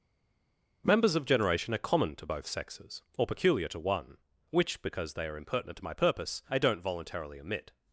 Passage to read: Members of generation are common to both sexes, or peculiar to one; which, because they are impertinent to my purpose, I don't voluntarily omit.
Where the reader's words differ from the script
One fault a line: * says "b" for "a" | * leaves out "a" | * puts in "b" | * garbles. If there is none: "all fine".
all fine